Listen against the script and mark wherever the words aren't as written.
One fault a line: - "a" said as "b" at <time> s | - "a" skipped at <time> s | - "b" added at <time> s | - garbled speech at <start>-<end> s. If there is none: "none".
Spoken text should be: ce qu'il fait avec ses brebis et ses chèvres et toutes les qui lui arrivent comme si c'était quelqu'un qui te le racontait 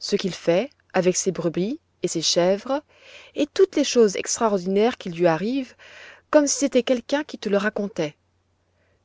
- "choses extraordinaires" added at 3.8 s